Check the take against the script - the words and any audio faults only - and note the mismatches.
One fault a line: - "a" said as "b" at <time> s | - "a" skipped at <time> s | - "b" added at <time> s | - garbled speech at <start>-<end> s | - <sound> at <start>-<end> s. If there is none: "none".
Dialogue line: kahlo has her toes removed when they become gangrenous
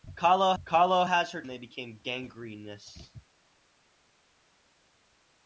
- "kahlo" added at 0.6 s
- "toes removed when" skipped at 1.4 s